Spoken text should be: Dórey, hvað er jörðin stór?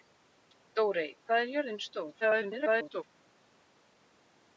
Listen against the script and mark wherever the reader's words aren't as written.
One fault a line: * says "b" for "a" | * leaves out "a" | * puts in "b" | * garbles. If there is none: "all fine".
* garbles